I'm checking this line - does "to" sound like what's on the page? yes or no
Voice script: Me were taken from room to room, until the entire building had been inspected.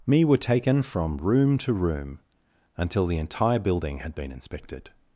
yes